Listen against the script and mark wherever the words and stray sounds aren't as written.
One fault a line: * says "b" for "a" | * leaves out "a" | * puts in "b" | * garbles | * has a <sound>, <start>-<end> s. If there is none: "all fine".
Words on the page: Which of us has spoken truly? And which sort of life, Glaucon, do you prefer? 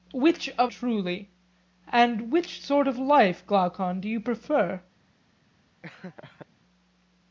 * leaves out "us has spoken"
* has a laugh, 5.8-6.5 s